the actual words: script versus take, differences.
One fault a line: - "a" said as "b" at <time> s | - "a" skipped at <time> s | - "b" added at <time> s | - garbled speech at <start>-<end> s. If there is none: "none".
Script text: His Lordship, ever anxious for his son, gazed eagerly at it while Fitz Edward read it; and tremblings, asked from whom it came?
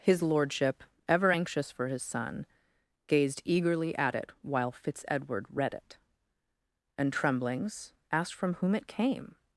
none